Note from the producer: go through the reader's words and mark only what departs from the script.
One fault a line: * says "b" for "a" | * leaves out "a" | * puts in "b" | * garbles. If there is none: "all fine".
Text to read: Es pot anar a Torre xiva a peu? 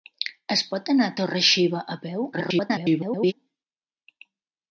* garbles